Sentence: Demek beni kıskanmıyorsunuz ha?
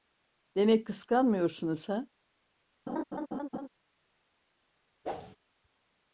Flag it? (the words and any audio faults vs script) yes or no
yes